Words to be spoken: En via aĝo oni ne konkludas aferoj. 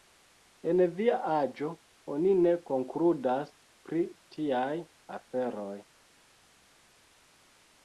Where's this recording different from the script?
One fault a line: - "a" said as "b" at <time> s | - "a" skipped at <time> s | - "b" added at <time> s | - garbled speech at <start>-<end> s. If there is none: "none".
- "pri tiaj" added at 3.9 s